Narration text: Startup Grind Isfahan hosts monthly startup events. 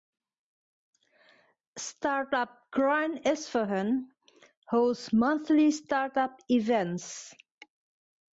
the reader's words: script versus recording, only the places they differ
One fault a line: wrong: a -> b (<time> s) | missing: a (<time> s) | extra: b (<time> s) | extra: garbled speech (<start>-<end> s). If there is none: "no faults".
no faults